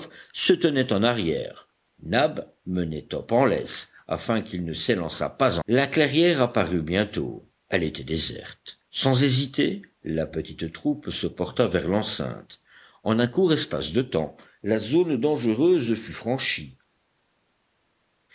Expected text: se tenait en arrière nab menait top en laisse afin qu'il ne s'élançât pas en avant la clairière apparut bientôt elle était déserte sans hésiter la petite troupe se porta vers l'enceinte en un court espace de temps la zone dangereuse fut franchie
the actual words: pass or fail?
fail